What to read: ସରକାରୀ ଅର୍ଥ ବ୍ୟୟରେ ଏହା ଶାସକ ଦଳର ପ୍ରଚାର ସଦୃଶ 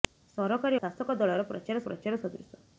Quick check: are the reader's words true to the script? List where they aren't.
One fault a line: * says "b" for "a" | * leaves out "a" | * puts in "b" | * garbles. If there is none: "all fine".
* leaves out "ଅର୍ଥ ବ୍ୟୟରେ ଏହା"
* puts in "ପ୍ରଚାର"